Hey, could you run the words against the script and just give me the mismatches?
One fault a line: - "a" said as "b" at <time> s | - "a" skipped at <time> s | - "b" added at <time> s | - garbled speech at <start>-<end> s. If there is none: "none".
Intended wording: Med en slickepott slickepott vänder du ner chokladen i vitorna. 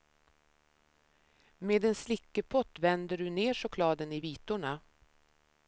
- "slickepott" skipped at 2.8 s